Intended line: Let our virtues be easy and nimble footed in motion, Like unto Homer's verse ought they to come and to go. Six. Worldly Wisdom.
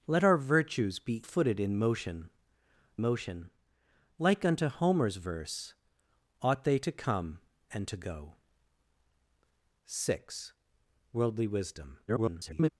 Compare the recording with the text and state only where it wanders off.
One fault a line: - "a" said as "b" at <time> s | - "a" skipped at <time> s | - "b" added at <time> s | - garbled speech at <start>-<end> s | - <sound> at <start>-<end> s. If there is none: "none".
- "easy and nimble" skipped at 1.2 s
- "motion" added at 3.0 s
- garbled speech at 12.1-12.7 s